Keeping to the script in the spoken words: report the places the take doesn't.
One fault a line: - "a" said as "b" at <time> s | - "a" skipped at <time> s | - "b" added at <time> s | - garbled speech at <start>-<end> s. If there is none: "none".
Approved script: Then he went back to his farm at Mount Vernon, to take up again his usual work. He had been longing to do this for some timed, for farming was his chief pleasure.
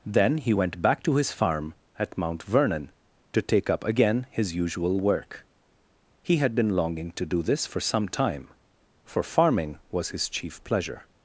- "timed" said as "time" at 8.1 s